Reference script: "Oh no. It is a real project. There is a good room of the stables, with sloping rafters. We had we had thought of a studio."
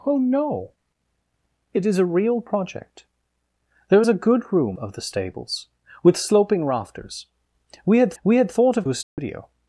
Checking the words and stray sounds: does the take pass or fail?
fail